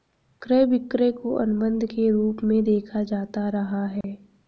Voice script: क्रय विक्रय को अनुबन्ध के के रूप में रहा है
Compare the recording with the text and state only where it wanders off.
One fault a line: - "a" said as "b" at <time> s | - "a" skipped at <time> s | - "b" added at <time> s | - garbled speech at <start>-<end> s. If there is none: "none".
- "के" skipped at 2.1 s
- "देखा जाता" added at 2.6 s